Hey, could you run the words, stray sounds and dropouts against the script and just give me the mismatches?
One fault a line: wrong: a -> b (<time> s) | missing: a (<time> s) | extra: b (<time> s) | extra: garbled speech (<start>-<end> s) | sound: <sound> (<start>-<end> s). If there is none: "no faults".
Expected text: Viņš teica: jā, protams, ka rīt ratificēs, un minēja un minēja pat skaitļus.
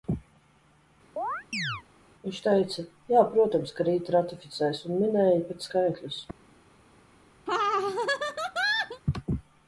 sound: chirp (1.2-1.8 s)
missing: un minēja (5.4 s)
sound: laugh (7.5-9.0 s)